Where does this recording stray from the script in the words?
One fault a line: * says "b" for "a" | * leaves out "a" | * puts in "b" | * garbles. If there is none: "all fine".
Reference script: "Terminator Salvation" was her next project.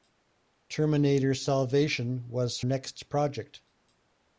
* leaves out "her"